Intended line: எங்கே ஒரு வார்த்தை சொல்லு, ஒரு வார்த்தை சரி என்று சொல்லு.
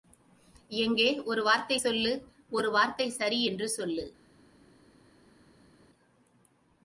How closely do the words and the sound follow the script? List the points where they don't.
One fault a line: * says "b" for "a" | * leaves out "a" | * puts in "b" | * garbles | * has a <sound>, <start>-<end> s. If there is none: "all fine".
all fine